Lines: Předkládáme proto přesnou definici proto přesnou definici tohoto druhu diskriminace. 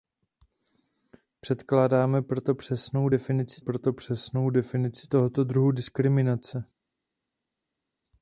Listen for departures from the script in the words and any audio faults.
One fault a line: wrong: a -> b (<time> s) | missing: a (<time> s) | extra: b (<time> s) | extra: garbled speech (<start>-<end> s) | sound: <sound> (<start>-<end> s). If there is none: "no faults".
no faults